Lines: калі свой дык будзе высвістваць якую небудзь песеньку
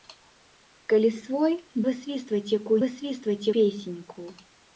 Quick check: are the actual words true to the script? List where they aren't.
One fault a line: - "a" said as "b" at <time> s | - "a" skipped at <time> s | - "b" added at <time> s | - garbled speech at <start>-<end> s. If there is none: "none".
- "дык будзе" skipped at 1.5 s
- "небудзь" said as "высвістваць" at 2.8 s